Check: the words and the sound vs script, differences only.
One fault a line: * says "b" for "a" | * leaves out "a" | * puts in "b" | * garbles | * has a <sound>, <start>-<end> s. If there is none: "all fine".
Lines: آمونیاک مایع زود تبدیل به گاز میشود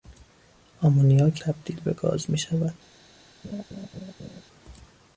* leaves out "مایع زود"
* has a laugh, 3.4-4.4 s